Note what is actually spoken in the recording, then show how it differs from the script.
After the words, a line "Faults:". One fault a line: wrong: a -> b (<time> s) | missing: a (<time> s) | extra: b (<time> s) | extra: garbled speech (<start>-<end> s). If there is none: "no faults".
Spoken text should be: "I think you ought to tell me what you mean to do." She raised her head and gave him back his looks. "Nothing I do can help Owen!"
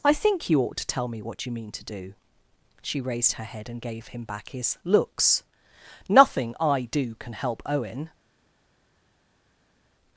"I think you ought to tell me what you mean to do." She raised her head and gave him back his looks. "Nothing I do can help Owen!"
Faults:
no faults